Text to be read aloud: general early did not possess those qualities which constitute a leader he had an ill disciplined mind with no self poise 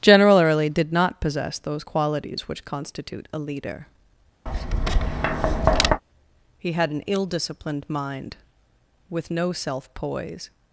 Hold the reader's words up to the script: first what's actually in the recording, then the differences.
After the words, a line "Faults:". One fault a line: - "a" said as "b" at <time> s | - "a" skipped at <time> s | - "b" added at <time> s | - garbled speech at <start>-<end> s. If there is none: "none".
general early did not possess those qualities which constitute a leader he had an ill disciplined mind with no self poise
Faults:
none